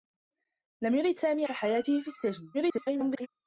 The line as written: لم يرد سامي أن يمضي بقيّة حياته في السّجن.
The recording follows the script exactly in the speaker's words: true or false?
false